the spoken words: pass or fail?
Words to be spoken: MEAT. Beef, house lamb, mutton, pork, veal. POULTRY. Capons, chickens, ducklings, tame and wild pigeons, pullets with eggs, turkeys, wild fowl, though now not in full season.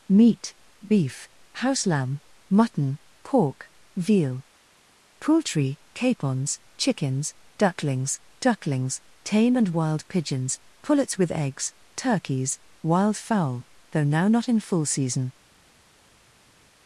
fail